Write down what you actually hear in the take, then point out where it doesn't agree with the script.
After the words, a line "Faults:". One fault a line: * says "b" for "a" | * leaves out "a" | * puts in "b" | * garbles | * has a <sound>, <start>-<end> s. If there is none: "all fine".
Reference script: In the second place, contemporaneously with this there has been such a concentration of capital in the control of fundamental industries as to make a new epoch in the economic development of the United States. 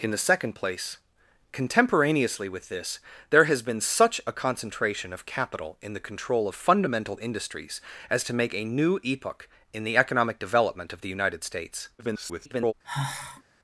In the second place, contemporaneously with this there has been such a concentration of capital in the control of fundamental industries as to make a new epoch in the economic development of the United States. [garbled]
Faults:
* garbles
* has a sigh, 12.8-13.4 s